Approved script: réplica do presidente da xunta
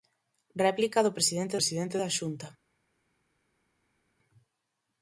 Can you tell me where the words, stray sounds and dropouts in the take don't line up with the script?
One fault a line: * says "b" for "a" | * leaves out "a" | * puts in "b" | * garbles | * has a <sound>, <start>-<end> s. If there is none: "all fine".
* puts in "presidente"